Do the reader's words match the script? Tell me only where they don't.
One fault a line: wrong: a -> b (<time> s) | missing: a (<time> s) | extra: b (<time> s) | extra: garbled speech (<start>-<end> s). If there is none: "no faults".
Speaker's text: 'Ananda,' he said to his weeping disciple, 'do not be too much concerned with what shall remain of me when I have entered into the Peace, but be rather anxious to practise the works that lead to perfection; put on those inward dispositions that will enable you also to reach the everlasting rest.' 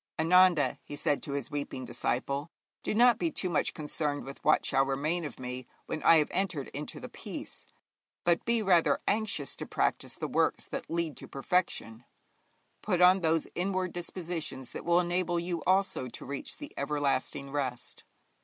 no faults